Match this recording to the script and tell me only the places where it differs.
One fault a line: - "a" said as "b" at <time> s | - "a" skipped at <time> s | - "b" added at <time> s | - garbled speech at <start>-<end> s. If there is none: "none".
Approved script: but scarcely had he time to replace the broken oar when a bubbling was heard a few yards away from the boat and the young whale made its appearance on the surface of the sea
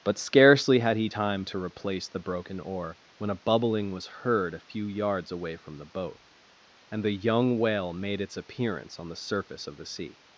none